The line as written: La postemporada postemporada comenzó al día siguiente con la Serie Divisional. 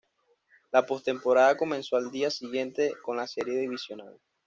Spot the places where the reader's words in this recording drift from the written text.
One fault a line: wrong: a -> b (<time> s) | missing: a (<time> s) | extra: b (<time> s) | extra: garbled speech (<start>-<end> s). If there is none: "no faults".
missing: postemporada (1.6 s)